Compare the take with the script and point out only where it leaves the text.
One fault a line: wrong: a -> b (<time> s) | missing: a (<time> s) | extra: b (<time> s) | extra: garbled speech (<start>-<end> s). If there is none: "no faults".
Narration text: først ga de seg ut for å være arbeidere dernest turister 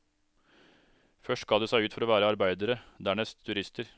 no faults